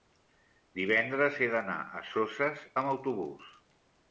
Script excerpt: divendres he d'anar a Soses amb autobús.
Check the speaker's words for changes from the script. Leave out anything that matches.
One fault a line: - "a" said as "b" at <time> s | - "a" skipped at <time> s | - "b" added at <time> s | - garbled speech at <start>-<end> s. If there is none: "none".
none